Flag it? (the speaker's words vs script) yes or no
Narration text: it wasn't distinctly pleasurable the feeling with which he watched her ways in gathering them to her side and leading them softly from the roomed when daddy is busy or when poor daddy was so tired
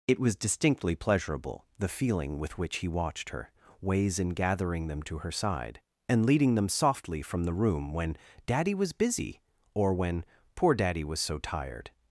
yes